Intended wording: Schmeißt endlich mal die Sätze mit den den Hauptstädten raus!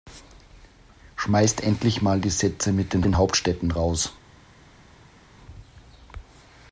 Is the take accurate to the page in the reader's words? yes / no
yes